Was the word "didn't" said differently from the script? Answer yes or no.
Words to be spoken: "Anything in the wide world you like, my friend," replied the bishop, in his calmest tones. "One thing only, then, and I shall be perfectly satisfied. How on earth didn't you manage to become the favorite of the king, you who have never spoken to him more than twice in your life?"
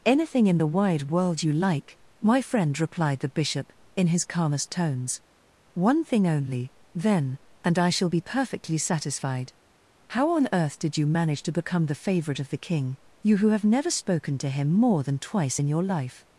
yes